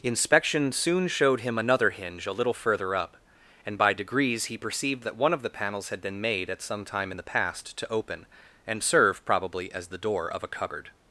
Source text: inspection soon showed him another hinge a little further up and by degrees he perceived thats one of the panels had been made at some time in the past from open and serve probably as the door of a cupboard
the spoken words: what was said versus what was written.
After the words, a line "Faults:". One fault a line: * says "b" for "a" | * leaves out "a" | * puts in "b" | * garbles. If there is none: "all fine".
inspection soon showed him another hinge a little further up and by degrees he perceived that one of the panels had been made at some time in the past to open and serve probably as the door of a cupboard
Faults:
* says "that" for "thats"
* says "to" for "from"